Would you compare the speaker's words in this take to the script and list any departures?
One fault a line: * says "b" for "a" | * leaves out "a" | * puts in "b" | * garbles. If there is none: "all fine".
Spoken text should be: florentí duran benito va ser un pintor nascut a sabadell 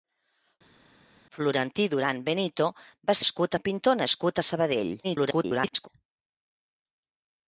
* says "nascut" for "ser"
* garbles